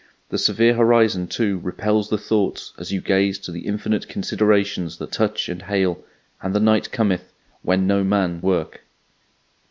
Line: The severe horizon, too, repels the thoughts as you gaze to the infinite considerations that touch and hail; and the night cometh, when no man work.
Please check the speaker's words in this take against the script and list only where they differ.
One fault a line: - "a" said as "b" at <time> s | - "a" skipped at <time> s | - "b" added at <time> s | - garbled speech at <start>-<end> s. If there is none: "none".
none